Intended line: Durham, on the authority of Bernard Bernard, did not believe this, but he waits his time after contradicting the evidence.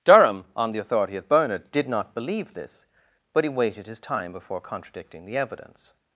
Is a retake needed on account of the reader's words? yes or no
yes